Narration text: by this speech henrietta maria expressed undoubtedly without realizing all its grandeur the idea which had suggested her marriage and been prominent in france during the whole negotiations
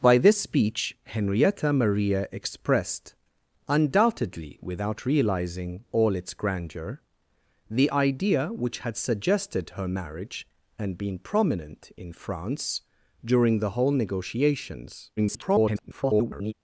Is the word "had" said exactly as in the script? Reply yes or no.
yes